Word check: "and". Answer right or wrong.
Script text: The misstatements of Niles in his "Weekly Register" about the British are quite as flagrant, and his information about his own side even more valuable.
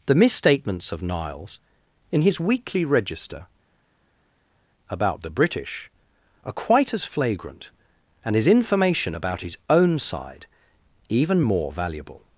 right